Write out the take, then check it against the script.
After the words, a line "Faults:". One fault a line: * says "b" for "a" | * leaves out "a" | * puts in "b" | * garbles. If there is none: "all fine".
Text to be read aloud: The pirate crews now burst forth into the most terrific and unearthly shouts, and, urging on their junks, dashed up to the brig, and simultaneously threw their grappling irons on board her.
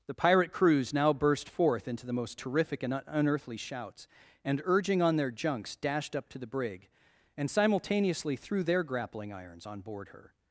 The pirate crews now burst forth into the most terrific and unearthly shouts, and, urging on their junks, dashed up to the brig, and simultaneously threw their grappling irons on board her.
Faults:
all fine